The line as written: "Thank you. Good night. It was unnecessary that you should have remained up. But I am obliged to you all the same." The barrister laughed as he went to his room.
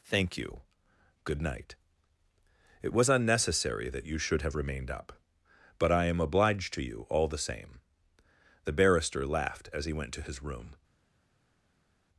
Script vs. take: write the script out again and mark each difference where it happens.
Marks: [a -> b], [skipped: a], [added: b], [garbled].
"Thank you. Good night. It was unnecessary that you should have remained up. But I am obliged to you all the same." The barrister laughed as he went to his room.